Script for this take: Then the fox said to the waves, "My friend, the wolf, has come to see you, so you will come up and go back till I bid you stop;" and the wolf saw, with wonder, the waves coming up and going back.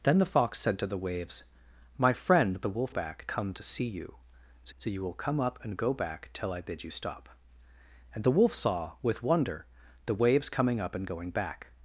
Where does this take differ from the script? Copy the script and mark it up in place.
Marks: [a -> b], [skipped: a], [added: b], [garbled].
Then the fox said to the waves, "My friend, the wolf, [has -> back] come to see you, so [added: so] you will come up and go back till I bid you stop;" and the wolf saw, with wonder, the waves coming up and going back.